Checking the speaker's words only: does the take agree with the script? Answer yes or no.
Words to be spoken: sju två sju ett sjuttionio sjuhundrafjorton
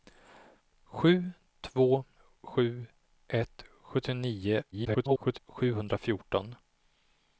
no